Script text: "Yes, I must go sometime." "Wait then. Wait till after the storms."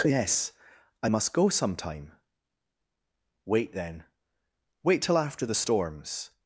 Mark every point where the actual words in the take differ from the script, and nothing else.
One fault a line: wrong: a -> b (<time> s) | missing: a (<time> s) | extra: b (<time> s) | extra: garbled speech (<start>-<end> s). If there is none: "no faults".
no faults